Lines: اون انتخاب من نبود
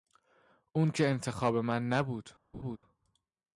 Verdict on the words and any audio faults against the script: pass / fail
fail